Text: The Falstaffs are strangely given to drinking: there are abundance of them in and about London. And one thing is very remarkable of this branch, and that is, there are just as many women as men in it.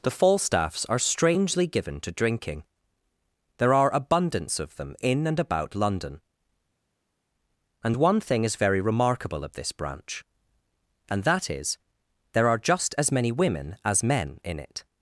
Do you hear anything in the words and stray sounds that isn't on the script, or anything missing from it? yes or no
no